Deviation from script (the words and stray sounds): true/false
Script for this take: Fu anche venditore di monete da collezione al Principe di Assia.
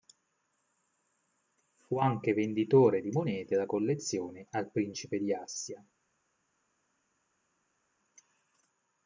false